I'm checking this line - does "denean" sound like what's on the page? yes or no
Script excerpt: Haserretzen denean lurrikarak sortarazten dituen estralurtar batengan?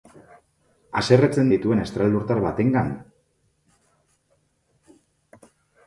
no